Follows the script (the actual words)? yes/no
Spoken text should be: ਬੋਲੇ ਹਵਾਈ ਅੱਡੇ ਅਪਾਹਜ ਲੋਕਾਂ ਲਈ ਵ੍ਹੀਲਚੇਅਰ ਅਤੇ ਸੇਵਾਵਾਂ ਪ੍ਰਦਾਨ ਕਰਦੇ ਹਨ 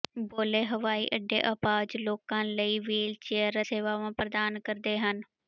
no